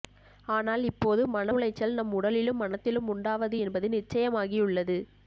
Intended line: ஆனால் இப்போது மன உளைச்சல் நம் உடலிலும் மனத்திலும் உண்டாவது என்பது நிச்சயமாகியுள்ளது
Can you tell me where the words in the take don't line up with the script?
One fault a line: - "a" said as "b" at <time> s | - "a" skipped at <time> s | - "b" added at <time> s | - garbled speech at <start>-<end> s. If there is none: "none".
none